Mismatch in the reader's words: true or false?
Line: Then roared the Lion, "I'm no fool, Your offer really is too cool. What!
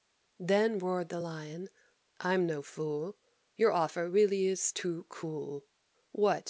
false